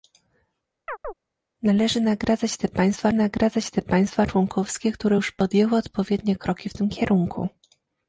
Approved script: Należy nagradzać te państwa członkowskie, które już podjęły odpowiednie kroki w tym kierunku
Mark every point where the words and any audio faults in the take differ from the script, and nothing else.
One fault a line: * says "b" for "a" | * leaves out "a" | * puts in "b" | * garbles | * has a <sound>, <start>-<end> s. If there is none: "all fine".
* has a chirp, 0.9-1.1 s
* puts in "nagradzać te państwa"